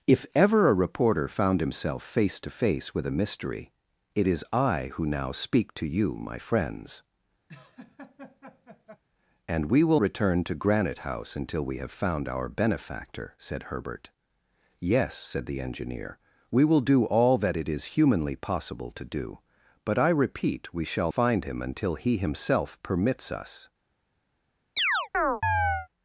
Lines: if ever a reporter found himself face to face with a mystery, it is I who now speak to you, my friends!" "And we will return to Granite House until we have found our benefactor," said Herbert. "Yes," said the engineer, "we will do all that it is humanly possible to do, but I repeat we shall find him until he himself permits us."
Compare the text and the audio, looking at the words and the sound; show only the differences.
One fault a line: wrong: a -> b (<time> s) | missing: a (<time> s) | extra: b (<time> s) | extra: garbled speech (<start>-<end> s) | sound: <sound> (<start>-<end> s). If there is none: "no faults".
sound: laugh (7.5-9.0 s)
sound: chirp (24.8-25.9 s)